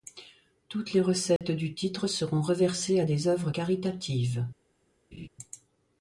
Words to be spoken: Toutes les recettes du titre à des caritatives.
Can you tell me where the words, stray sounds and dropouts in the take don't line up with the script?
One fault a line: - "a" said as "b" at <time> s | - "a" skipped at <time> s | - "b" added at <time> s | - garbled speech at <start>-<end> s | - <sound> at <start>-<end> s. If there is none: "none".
- dropout at 1.4-1.4 s
- "seront reversées" added at 2.1 s
- "œuvres" added at 3.3 s
- laugh at 5.1-5.3 s